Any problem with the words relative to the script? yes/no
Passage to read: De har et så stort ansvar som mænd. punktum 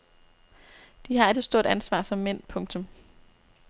no